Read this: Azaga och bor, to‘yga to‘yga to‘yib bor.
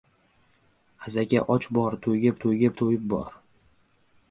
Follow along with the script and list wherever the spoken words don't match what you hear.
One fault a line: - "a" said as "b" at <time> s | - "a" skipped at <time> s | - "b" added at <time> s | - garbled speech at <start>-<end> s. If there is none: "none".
none